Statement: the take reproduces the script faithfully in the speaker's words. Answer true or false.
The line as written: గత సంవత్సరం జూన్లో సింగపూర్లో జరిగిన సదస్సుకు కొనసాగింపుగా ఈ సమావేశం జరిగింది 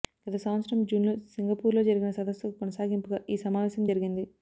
true